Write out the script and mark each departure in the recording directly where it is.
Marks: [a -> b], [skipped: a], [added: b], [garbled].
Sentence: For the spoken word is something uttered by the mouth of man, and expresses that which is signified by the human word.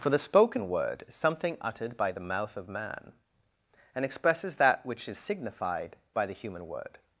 For the spoken word is something uttered by the mouth of man, and expresses that which is signified by the human word.